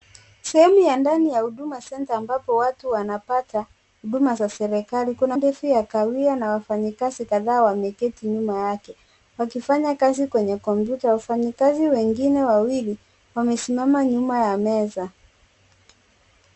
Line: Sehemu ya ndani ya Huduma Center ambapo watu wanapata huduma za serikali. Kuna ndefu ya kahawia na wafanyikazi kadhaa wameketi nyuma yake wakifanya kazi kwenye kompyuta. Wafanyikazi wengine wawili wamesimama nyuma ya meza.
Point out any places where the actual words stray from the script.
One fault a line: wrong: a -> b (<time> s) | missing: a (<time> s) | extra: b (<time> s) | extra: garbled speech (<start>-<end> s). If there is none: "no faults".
no faults